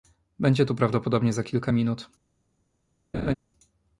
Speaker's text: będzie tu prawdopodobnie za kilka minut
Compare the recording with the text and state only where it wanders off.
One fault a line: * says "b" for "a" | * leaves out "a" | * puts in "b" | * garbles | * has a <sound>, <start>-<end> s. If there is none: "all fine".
* has a laugh, 3.1-3.3 s